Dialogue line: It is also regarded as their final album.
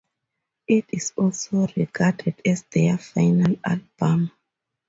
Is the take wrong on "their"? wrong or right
right